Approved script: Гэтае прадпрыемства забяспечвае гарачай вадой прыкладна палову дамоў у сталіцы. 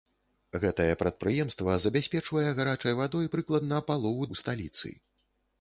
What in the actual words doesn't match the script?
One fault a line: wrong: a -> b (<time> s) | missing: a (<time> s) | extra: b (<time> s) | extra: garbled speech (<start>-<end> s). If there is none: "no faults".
missing: дамоў (4.3 s)